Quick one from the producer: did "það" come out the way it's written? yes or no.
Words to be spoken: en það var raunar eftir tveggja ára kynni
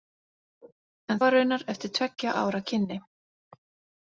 no